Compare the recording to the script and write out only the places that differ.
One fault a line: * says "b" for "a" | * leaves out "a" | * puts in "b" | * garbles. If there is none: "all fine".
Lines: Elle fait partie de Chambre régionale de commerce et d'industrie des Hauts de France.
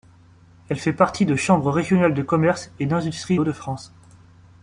* leaves out "des"